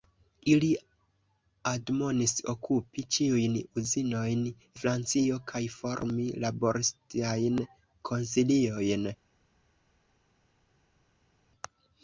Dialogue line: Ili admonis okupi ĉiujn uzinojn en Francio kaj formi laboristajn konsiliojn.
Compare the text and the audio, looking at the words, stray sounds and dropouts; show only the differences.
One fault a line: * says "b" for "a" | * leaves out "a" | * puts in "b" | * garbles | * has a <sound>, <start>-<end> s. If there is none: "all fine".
* leaves out "en"